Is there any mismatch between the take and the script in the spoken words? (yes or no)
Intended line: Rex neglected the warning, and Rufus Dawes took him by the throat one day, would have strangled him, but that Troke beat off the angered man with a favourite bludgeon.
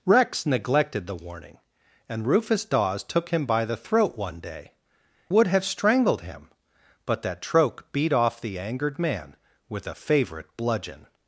no